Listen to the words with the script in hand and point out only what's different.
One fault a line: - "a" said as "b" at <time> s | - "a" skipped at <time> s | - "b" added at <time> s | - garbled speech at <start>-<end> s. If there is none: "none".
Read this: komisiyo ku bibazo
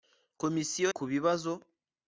none